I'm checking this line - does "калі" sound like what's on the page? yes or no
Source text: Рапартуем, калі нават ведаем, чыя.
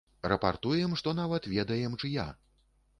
no